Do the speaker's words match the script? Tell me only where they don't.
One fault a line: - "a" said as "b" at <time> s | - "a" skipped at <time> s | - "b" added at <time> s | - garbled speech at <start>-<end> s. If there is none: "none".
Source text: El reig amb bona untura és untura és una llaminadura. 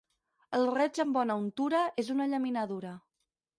- "untura és" skipped at 2.1 s